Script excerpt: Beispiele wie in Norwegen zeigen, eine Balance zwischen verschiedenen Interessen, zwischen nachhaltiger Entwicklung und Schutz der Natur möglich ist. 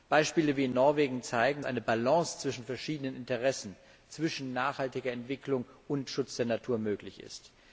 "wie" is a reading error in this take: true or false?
false